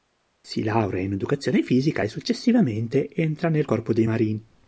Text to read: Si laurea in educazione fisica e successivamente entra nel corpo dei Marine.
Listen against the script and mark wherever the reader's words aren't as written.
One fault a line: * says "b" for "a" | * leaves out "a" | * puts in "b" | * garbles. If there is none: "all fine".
all fine